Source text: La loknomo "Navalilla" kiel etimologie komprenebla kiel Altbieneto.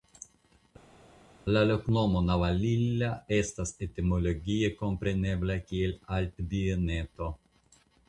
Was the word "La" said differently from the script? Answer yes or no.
no